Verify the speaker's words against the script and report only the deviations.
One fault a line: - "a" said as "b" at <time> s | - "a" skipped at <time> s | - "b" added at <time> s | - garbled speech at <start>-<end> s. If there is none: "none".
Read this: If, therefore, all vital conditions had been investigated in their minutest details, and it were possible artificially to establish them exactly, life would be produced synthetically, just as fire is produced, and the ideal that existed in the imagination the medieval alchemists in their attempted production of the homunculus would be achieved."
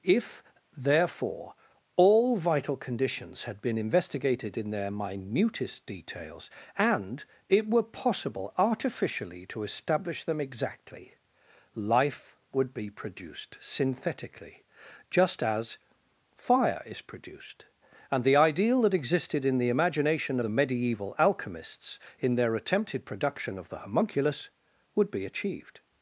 none